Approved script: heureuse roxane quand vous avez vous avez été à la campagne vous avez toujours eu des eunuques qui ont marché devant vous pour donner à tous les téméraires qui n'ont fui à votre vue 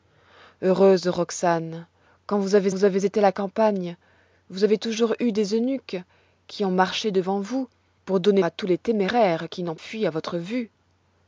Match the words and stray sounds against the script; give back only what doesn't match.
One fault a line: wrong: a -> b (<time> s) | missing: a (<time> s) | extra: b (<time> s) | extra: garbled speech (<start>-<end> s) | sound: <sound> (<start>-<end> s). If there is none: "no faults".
no faults